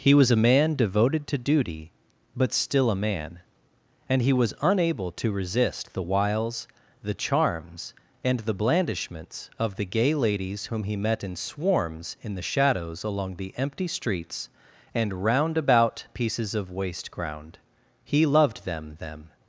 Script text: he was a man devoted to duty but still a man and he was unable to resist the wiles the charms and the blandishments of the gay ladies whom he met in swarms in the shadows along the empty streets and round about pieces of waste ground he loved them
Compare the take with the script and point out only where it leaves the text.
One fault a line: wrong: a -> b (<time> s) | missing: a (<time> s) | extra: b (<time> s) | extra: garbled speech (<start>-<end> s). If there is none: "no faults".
extra: them (19.0 s)